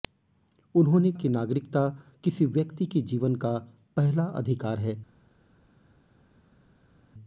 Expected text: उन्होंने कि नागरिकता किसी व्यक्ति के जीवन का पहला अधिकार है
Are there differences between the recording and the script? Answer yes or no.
no